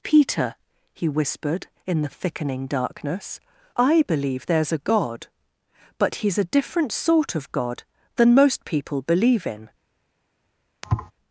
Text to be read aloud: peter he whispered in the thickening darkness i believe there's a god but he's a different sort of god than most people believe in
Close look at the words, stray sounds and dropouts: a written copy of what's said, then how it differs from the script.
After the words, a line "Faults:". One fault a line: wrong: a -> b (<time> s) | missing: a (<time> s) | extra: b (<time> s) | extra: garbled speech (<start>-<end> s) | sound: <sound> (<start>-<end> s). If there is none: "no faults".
peter he whispered in the thickening darkness i believe there's a god but he's a different sort of god than most people believe in
Faults:
sound: thud (10.8-11.1 s)